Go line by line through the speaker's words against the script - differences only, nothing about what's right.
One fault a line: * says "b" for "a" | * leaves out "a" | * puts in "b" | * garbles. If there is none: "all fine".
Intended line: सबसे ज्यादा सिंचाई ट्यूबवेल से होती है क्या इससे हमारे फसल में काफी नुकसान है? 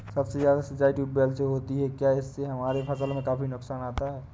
* puts in "आता"